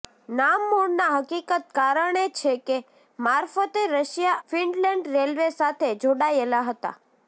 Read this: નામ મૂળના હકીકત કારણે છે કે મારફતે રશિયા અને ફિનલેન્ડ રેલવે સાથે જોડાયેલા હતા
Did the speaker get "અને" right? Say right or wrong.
wrong